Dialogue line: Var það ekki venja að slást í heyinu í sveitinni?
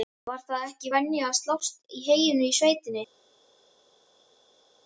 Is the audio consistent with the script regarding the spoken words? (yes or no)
yes